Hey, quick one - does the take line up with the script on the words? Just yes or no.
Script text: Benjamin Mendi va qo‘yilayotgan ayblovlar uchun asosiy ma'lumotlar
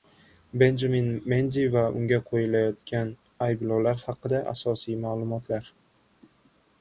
no